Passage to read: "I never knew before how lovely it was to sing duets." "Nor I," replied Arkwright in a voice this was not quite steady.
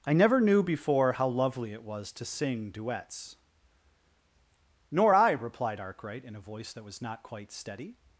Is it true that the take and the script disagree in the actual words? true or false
true